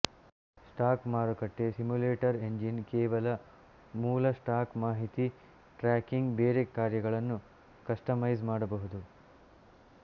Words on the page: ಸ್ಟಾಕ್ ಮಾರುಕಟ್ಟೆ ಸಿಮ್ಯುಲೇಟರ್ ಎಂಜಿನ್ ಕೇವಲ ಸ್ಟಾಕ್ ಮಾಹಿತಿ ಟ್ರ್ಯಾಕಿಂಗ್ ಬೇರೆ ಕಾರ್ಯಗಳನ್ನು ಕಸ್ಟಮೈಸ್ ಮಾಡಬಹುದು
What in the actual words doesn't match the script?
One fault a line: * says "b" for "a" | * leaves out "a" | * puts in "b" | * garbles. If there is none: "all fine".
* puts in "ಮೂಲ"